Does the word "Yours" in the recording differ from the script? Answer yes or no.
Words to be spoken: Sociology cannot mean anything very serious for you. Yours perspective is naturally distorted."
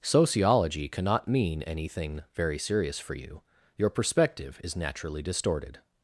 yes